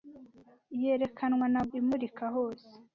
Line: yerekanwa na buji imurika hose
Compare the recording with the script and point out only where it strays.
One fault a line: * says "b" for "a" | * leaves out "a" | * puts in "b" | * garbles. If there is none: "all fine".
* leaves out "buji"